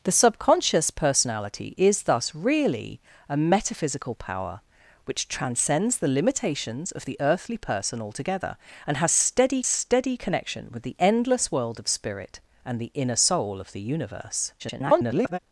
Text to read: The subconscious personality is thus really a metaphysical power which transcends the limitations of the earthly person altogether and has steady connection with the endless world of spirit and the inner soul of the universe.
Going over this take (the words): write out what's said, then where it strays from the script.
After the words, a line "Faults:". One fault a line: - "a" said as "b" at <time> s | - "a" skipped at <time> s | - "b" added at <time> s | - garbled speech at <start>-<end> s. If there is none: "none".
The subconscious personality is thus really a metaphysical power which transcends the limitations of the earthly person altogether and has steady steady connection with the endless world of spirit and the inner soul of the universe. [garbled]
Faults:
- "steady" added at 9.6 s
- garbled speech at 14.6-15.4 s